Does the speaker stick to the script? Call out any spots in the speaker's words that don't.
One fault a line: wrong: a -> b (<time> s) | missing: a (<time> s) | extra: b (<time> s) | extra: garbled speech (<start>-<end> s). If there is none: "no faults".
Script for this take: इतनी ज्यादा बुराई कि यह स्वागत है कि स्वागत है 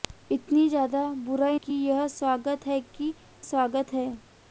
no faults